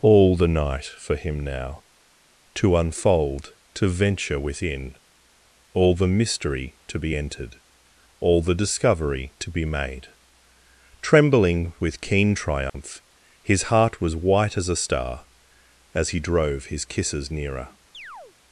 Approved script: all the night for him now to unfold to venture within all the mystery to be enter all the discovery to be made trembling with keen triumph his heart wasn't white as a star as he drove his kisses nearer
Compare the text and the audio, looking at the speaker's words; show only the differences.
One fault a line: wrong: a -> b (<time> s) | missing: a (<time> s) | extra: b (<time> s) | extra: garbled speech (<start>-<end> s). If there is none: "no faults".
wrong: enter -> entered (7.1 s)
wrong: wasn't -> was (14.0 s)